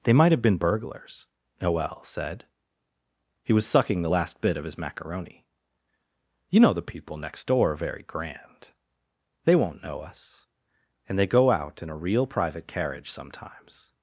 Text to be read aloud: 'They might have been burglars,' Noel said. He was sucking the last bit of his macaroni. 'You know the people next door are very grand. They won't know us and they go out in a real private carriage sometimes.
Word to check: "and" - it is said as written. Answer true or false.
true